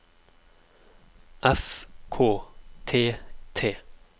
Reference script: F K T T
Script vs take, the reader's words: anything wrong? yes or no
no